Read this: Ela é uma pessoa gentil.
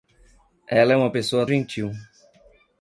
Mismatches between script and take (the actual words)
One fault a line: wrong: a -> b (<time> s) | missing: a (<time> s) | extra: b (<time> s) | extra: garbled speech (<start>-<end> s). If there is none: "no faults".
no faults